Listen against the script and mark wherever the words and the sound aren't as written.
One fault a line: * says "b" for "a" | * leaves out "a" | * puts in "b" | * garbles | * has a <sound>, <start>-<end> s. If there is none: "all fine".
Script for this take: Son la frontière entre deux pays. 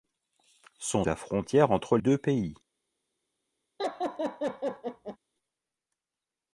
* has a laugh, 3.8-5.2 s